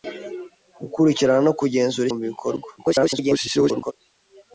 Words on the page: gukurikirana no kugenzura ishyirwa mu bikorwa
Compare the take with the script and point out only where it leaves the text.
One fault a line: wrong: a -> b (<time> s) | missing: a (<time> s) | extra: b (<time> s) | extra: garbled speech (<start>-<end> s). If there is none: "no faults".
missing: ishyirwa (2.1 s)
extra: garbled speech (2.8-3.9 s)